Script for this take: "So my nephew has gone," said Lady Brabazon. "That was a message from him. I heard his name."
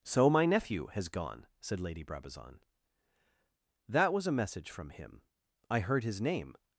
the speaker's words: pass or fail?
pass